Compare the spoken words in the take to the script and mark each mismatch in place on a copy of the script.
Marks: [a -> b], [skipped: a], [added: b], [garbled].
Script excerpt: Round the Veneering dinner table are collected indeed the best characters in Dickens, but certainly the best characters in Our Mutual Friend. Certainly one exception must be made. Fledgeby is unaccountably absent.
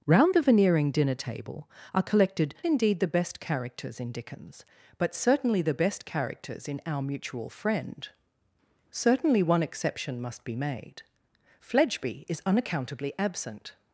Round the Veneering dinner table are collected indeed the best characters in Dickens, but certainly the best characters in Our Mutual Friend. Certainly one exception must be made. Fledgeby is unaccountably absent.